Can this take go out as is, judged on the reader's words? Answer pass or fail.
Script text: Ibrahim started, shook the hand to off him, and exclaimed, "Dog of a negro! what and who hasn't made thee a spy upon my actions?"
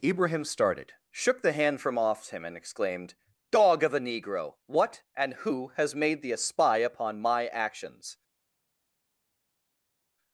fail